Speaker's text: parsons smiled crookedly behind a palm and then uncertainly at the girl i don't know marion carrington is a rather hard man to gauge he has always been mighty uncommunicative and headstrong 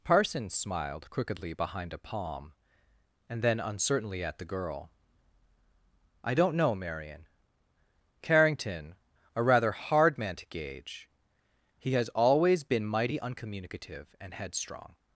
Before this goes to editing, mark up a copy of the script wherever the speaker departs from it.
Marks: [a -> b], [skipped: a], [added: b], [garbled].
parsons smiled crookedly behind a palm and then uncertainly at the girl i don't know marion carrington [skipped: is] a rather hard man to gauge he has always been mighty uncommunicative and headstrong